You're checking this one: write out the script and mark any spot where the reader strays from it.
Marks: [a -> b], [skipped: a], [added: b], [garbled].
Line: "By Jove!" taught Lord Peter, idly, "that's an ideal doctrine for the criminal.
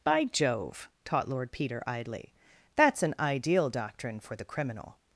"By Jove!" taught Lord Peter, idly, "that's an ideal doctrine for the criminal.